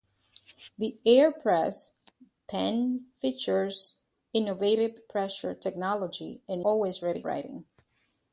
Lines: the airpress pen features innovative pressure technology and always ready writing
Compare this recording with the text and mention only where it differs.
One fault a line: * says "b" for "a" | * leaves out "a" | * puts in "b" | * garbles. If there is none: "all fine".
all fine